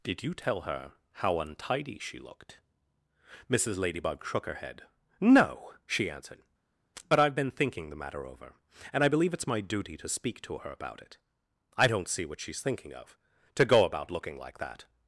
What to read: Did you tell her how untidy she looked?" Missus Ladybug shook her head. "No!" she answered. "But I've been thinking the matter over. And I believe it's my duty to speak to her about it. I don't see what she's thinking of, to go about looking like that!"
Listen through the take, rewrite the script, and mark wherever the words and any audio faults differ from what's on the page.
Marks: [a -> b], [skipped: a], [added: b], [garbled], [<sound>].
Did you tell her how untidy she looked?" Missus Ladybug shook her head. "No!" she answered. "But I've been thinking the matter over. And I believe it's my duty to speak to her about it. I don't see what she's thinking of, to go about looking like that!"